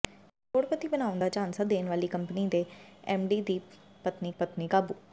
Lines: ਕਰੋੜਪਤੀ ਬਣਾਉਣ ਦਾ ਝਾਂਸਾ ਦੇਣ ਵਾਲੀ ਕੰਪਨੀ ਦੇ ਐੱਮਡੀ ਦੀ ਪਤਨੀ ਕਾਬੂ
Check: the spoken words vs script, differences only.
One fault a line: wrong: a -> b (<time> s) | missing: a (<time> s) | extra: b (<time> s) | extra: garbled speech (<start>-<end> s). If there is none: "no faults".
extra: ਪਤਨੀ (4.4 s)